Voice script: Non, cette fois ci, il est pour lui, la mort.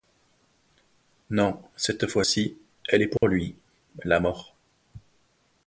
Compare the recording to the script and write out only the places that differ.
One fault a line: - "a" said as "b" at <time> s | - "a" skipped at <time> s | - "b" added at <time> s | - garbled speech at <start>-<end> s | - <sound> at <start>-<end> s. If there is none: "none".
- "il" said as "elle" at 2.9 s
- dropout at 3.2-3.2 s